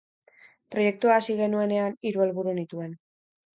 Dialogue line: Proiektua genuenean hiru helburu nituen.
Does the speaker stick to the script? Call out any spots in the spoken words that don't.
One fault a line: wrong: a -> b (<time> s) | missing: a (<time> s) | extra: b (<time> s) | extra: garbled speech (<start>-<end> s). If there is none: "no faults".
extra: hasi (1.2 s)